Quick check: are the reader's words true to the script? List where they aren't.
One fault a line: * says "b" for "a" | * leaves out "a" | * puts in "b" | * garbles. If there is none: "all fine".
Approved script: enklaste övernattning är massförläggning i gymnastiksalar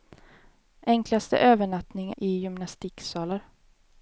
* leaves out "är massförläggning"